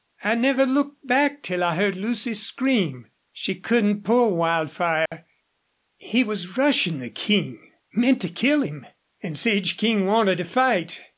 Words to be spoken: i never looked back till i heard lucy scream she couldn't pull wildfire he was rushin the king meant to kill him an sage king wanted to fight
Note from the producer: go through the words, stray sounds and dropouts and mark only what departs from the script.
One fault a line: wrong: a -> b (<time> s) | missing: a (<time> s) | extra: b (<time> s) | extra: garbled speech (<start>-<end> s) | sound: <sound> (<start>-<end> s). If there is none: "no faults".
sound: dropout (5.1-5.1 s)